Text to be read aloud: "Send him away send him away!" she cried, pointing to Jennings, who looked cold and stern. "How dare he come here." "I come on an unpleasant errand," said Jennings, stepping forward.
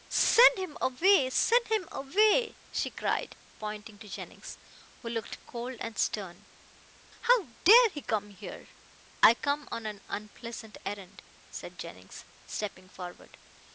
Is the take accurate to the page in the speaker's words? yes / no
yes